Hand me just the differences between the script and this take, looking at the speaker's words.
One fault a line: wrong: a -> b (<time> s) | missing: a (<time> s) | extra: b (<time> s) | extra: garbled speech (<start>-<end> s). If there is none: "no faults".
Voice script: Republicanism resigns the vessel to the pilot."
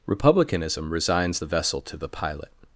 no faults